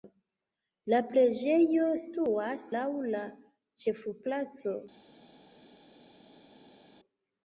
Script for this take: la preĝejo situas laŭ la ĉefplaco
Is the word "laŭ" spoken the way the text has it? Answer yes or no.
yes